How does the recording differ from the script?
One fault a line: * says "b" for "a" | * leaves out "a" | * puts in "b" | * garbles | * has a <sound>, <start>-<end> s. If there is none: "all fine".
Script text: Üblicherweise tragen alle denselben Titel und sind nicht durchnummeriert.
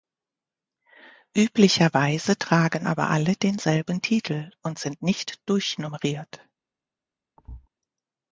* puts in "aber"
* has a thud, 7.4-7.7 s